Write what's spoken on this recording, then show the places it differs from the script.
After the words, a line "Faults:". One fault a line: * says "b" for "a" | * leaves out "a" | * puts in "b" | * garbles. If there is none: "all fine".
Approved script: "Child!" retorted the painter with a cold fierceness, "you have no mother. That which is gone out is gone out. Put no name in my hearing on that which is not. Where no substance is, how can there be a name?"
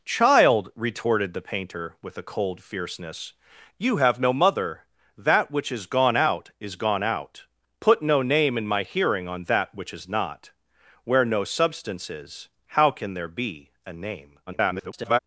"Child!" retorted the painter with a cold fierceness, "you have no mother. That which is gone out is gone out. Put no name in my hearing on that which is not. Where no substance is, how can there be a name?" [garbled]
Faults:
* garbles